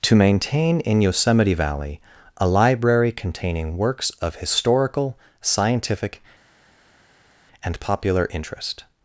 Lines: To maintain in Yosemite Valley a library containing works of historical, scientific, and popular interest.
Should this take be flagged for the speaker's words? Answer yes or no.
no